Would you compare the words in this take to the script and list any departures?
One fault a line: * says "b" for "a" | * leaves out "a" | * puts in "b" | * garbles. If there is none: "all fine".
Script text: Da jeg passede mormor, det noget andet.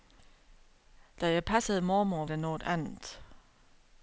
all fine